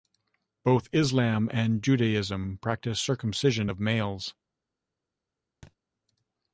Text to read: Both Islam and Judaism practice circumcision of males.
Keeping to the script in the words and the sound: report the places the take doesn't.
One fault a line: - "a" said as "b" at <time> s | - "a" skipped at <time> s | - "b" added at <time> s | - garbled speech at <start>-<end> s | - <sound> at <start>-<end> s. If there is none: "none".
- thud at 5.6-5.8 s